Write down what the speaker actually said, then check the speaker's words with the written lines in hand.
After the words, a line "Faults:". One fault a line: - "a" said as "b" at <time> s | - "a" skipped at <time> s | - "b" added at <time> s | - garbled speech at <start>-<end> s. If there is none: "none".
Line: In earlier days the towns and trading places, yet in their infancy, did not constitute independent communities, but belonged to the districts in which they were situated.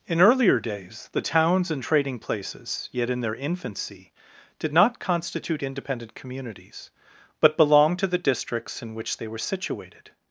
In earlier days the towns and trading places, yet in their infancy, did not constitute independent communities, but belonged to the districts in which they were situated.
Faults:
none